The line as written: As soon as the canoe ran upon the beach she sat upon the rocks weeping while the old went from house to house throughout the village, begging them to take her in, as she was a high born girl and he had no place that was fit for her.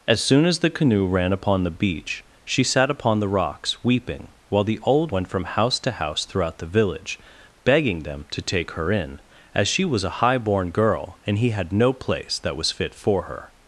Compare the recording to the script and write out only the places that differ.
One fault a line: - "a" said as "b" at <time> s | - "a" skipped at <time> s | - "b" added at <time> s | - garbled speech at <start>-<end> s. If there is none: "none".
none